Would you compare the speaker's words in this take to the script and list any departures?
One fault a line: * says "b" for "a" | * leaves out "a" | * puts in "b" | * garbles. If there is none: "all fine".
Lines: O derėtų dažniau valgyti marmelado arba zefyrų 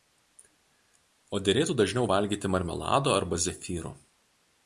all fine